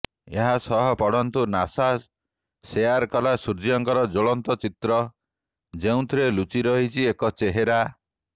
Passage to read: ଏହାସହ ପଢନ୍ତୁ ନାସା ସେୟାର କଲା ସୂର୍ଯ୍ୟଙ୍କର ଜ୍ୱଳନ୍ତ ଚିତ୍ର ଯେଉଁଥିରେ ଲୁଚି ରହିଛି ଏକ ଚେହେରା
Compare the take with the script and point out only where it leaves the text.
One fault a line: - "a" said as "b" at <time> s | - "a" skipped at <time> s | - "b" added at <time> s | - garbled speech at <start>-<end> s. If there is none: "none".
none